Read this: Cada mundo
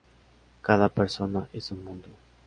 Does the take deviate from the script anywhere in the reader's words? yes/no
yes